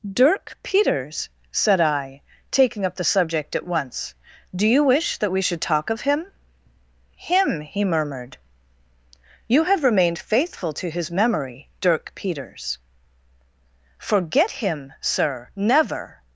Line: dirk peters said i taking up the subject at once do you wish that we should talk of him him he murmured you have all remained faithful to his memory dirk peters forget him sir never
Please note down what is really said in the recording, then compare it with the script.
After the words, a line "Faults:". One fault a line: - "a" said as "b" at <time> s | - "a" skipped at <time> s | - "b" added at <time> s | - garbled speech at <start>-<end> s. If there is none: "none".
dirk peters said i taking up the subject at once do you wish that we should talk of him him he murmured you have remained faithful to his memory dirk peters forget him sir never
Faults:
- "all" skipped at 9.8 s